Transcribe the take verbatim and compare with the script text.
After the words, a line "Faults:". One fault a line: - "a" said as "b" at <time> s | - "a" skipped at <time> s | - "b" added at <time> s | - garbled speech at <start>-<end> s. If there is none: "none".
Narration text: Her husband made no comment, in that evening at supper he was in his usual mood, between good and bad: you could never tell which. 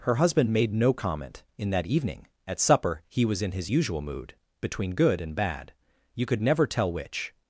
Her husband made no comment, in that evening at supper he was in his usual mood, between good and bad: you could never tell which.
Faults:
none